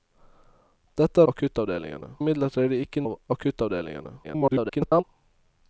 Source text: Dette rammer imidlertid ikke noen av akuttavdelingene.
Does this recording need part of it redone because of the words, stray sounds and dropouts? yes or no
yes